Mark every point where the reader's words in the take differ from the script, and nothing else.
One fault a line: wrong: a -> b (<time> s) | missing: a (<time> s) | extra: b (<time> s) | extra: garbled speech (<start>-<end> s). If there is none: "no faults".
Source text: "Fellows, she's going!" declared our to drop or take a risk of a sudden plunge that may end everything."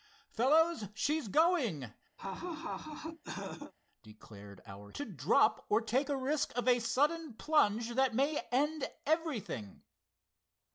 no faults